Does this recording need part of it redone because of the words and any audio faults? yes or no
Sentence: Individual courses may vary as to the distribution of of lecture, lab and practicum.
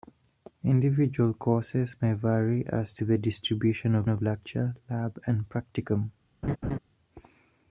yes